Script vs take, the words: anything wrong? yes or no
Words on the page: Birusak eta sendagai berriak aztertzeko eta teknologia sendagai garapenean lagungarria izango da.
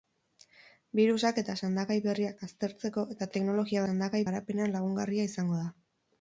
no